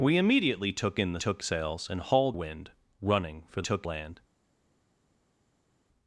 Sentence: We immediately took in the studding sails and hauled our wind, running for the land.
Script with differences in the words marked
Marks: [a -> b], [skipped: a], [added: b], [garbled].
We immediately took in the [studding -> took] sails and hauled [skipped: our] wind, running for [the -> took] land.